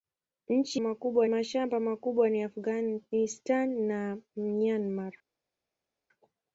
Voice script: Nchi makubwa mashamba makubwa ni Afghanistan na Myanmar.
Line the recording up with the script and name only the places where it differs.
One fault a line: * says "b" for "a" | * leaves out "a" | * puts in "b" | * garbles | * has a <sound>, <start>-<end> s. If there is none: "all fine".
all fine